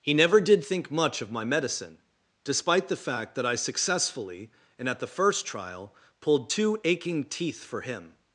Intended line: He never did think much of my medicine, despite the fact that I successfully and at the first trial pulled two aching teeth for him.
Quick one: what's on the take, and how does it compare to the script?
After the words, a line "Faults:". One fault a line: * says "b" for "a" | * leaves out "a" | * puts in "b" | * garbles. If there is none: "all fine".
He never did think much of my medicine, despite the fact that I successfully and at the first trial pulled two aching teeth for him.
Faults:
all fine